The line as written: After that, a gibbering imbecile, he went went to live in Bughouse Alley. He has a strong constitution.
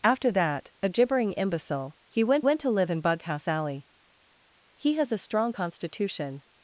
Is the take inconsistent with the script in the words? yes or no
no